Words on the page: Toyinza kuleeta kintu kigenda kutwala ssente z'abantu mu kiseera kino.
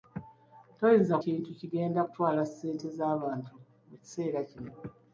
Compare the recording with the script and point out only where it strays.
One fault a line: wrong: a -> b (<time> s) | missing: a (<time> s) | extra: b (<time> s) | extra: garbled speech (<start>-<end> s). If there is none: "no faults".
missing: kuleeta (1.1 s)